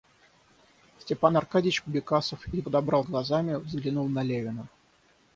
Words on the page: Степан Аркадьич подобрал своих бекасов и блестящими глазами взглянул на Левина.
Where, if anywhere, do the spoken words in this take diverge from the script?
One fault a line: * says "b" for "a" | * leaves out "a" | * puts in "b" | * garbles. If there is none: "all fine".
* leaves out "подобрал своих"
* says "подобрал" for "блестящими"